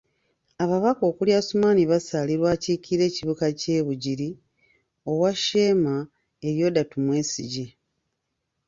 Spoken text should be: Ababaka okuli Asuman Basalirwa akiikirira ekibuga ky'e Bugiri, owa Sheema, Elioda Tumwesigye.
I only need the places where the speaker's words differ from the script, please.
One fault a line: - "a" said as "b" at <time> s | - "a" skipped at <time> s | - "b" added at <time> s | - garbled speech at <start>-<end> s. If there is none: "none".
none